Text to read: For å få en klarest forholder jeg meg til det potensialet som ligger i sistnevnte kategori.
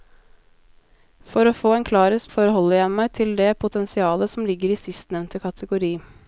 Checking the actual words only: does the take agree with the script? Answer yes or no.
yes